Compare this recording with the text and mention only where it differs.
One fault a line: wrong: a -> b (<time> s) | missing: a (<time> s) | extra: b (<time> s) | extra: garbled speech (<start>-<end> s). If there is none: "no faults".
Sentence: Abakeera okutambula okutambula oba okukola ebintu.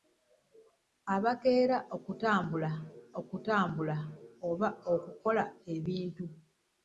no faults